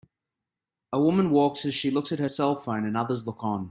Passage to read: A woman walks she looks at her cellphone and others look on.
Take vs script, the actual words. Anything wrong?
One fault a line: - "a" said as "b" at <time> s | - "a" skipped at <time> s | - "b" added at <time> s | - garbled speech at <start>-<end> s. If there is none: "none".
- "as" added at 1.6 s